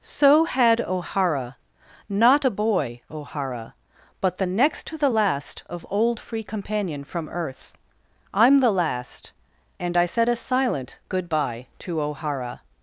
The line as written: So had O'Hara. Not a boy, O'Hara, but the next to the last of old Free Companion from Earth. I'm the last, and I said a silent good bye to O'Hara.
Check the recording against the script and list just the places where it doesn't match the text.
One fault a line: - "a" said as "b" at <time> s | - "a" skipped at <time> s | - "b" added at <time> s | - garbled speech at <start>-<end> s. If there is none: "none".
none